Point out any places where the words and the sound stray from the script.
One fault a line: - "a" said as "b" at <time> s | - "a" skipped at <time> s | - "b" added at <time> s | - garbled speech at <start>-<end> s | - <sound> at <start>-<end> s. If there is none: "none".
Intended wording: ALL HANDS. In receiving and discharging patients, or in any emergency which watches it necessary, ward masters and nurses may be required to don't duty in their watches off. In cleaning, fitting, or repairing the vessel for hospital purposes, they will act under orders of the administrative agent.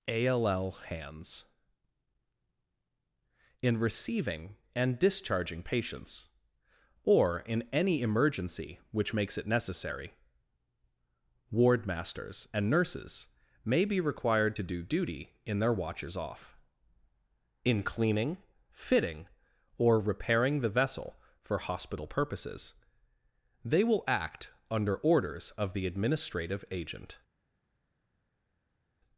- "watches" said as "makes" at 9.1 s
- "don't" said as "do" at 14.6 s